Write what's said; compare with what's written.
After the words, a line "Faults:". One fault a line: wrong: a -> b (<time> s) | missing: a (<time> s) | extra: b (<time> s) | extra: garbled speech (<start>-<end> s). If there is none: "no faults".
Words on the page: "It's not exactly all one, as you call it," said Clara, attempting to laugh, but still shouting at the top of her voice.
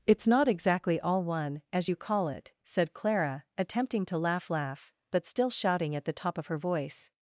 "It's not exactly all one, as you call it," said Clara, attempting to laugh laugh, but still shouting at the top of her voice.
Faults:
extra: laugh (4.5 s)